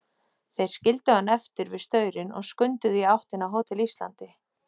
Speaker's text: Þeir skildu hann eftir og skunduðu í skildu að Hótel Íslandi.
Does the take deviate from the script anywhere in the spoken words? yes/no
yes